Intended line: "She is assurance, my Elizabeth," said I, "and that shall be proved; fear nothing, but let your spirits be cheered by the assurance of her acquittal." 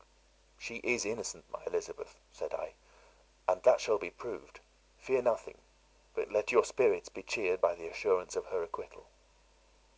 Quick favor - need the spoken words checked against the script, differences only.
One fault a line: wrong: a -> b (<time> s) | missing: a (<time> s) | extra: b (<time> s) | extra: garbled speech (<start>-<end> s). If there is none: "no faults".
wrong: assurance -> innocent (1.1 s)